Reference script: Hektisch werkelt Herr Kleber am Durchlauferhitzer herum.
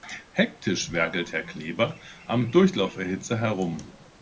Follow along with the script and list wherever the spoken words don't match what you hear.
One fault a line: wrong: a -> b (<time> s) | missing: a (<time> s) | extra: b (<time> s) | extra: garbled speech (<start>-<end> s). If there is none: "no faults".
no faults